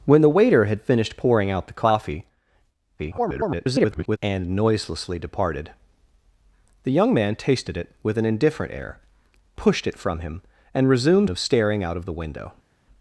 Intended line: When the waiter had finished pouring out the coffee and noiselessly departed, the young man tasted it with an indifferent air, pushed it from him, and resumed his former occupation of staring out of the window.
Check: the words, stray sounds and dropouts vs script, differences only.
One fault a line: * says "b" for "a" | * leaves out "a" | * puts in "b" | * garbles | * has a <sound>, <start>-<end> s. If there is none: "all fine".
* garbles
* leaves out "his former occupation"